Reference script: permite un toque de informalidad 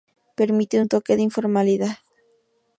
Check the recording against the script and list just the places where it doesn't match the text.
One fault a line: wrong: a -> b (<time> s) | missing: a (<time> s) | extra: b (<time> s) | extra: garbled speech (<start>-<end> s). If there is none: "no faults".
no faults